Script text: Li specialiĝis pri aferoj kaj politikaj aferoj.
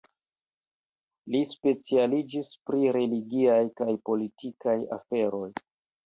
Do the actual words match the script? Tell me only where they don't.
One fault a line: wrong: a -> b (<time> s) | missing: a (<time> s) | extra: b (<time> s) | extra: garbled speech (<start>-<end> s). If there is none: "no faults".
wrong: aferoj -> religiaj (3.0 s)